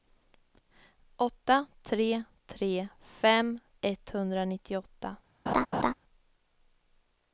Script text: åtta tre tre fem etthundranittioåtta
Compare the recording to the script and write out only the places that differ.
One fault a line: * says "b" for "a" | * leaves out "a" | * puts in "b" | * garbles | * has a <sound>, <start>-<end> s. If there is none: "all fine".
* has a laugh, 5.5-5.9 s